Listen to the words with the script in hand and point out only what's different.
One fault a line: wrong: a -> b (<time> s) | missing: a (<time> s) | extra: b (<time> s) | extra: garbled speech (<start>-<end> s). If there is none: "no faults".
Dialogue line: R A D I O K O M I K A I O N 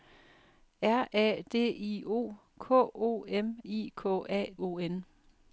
no faults